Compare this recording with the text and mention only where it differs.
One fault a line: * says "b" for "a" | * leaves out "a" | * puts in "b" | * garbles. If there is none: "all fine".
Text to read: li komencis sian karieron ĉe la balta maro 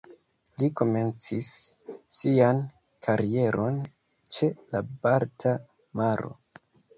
all fine